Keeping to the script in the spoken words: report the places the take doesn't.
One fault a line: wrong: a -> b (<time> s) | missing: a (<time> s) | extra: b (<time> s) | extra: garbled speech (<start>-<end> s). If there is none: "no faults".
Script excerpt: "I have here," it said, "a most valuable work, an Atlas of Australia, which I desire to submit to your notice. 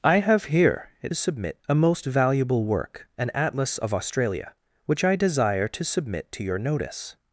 wrong: said -> submit (1.1 s)